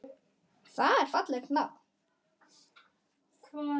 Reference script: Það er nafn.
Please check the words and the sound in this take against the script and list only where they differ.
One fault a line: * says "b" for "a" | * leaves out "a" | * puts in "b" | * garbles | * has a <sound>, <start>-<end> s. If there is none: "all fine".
* puts in "fallegt"